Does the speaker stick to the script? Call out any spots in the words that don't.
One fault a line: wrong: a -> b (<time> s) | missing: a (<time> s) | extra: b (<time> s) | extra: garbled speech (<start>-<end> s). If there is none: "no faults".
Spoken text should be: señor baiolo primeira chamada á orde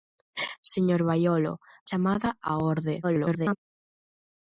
missing: primeira (1.5 s)
extra: garbled speech (3.0-3.6 s)